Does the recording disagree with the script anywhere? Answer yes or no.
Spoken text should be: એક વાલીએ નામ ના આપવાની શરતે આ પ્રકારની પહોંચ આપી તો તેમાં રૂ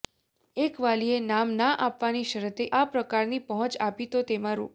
no